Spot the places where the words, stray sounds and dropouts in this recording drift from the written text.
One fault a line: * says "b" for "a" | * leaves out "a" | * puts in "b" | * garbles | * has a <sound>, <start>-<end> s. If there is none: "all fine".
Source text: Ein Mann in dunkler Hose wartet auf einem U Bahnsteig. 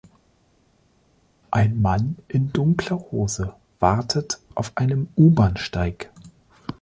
all fine